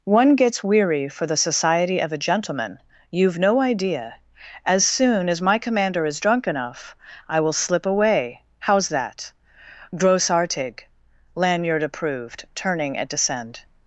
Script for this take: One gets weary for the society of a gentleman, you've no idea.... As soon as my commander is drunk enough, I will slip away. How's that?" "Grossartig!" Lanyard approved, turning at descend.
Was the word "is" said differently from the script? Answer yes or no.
no